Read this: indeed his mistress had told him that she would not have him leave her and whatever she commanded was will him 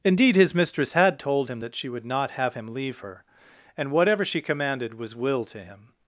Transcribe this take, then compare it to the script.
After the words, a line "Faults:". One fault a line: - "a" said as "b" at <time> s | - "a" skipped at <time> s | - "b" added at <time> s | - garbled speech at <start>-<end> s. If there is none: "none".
indeed his mistress had told him that she would not have him leave her and whatever she commanded was will to him
Faults:
- "to" added at 5.5 s